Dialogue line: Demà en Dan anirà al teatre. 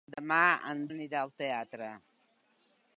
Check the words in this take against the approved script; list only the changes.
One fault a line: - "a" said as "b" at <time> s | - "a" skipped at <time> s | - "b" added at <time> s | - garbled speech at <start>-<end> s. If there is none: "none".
- "Dan" skipped at 0.8 s